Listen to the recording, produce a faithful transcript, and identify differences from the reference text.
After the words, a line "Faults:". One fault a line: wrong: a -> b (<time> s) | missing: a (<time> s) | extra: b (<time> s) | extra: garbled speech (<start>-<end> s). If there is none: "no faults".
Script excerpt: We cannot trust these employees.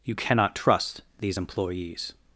You cannot trust these employees.
Faults:
wrong: We -> You (0.0 s)